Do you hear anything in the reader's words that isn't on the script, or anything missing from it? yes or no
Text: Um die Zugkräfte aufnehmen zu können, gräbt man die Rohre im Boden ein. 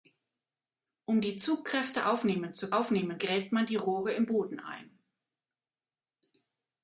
yes